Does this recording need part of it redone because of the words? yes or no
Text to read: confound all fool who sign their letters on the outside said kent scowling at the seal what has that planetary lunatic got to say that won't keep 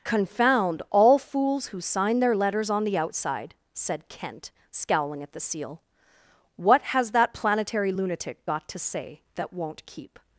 yes